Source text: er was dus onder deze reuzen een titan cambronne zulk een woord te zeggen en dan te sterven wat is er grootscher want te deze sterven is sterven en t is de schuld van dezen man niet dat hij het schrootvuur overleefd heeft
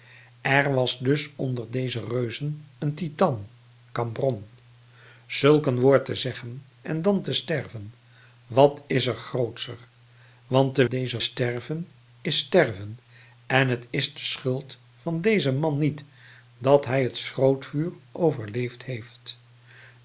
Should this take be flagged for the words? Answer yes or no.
no